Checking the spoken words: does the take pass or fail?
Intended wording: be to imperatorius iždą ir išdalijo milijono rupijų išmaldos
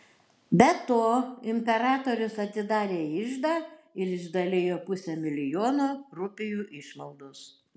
fail